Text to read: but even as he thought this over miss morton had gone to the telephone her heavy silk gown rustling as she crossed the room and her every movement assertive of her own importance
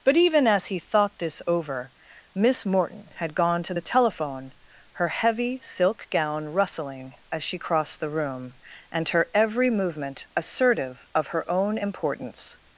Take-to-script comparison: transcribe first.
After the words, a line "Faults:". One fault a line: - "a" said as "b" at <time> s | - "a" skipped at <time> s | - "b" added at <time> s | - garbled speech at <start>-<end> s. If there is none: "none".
but even as he thought this over miss morton had gone to the telephone her heavy silk gown rustling as she crossed the room and her every movement assertive of her own importance
Faults:
none